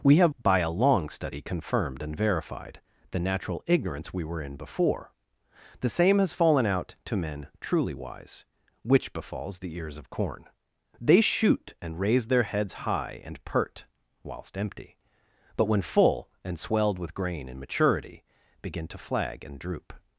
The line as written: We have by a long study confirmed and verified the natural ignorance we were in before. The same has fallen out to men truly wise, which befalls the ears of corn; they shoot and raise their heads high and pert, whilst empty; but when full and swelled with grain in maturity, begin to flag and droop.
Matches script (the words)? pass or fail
pass